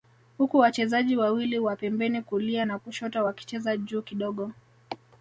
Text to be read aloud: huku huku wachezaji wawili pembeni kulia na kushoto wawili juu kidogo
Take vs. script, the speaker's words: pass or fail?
fail